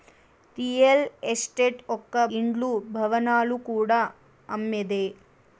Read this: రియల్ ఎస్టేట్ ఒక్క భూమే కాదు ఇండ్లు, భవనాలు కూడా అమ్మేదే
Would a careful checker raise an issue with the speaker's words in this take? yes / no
yes